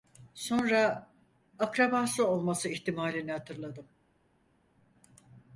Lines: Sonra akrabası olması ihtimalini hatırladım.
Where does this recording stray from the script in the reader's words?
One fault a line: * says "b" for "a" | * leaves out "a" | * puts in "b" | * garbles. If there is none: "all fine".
all fine